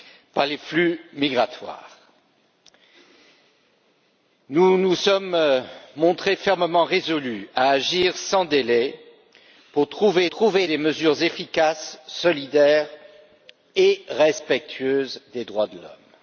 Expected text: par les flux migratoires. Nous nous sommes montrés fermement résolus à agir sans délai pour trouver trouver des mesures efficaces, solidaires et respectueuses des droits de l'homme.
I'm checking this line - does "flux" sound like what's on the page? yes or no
yes